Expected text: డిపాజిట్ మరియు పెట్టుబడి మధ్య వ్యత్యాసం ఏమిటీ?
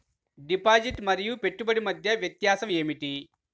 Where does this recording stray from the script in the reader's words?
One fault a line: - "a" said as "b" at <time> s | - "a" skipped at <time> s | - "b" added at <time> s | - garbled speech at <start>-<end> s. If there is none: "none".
none